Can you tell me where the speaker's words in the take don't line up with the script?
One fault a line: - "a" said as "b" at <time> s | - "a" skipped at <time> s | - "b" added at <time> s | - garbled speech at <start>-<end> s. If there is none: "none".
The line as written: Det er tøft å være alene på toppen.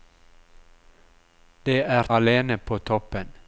- "tøft å være" skipped at 2.1 s